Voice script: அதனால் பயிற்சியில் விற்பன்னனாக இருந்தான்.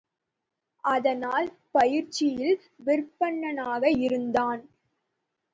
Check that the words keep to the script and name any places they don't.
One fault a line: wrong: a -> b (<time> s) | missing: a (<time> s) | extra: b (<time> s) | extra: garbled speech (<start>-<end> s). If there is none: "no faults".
no faults